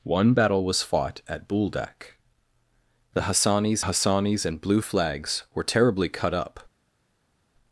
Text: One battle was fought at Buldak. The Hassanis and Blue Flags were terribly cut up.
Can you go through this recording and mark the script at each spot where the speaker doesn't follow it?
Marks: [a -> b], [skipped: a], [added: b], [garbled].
One battle was fought at Buldak. The Hassanis [added: Hassanis] and Blue Flags were terribly cut up.